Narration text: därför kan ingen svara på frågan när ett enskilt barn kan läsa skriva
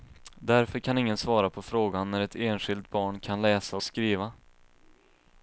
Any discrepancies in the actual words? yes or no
no